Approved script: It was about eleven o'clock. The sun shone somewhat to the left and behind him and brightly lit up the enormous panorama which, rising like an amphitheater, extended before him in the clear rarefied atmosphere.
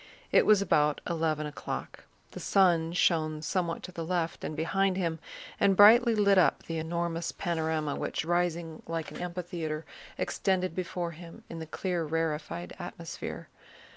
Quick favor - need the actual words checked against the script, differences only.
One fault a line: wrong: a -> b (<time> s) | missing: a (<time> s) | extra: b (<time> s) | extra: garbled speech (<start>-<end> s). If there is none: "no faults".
no faults